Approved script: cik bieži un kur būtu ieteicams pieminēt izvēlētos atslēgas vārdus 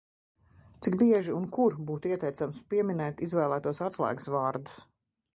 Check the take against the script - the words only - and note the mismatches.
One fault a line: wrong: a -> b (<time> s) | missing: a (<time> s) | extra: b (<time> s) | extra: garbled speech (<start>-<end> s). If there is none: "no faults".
no faults